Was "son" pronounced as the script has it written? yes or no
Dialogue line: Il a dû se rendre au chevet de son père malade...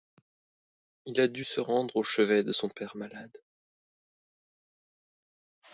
yes